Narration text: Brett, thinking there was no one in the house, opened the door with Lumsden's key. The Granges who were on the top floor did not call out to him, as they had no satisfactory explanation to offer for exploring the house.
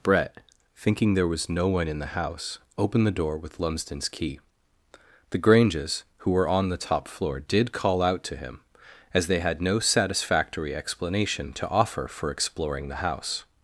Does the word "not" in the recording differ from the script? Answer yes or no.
yes